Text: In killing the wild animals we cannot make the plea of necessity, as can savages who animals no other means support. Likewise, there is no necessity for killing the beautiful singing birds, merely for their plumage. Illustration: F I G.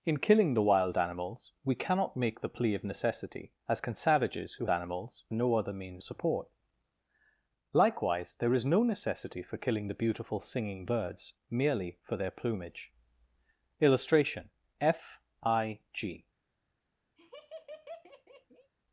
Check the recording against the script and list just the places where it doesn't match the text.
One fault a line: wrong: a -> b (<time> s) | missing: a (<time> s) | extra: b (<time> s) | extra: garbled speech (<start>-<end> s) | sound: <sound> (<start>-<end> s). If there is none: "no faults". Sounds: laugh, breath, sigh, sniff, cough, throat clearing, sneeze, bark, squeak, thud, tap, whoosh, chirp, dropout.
sound: laugh (17.2-18.7 s)